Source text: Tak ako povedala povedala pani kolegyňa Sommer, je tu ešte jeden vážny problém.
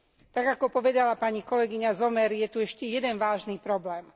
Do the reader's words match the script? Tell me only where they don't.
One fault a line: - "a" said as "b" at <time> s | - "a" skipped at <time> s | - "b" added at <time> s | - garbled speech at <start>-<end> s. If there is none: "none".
- "povedala" skipped at 1.2 s